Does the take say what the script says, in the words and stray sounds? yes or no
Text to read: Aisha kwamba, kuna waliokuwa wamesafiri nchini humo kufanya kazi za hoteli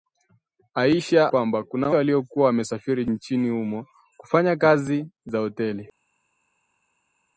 yes